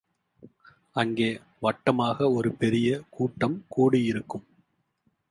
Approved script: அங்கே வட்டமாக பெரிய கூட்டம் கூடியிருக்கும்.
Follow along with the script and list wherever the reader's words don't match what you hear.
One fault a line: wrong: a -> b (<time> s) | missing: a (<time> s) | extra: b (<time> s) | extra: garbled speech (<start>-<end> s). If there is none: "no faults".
extra: ஒரு (2.3 s)